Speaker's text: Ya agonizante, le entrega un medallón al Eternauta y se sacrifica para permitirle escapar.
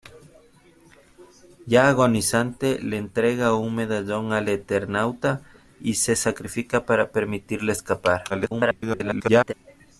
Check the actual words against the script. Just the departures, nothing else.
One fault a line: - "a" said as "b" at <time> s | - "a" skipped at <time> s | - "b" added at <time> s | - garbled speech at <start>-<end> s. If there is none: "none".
- garbled speech at 8.3-9.5 s